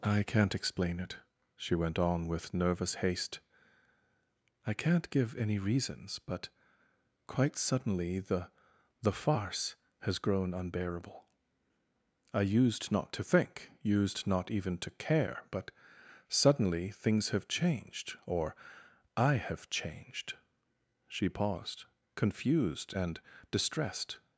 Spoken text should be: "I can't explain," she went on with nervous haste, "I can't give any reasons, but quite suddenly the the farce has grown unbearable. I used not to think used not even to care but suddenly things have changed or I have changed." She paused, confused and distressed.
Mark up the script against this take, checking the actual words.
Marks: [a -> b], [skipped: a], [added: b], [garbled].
"I can't explain," [added: it] she went on with nervous haste, "I can't give any reasons, but quite suddenly the the farce has grown unbearable. I used not to think used not even to care but suddenly things have changed or I have changed." She paused, confused and distressed.